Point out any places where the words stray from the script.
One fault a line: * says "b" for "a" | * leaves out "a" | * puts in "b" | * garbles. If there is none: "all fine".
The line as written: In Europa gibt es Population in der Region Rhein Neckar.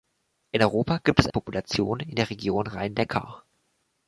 all fine